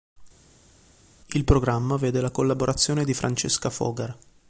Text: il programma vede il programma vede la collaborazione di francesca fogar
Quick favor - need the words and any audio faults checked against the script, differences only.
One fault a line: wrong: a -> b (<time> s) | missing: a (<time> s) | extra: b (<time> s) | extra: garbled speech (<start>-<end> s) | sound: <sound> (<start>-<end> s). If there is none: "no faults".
missing: il programma vede (2.2 s)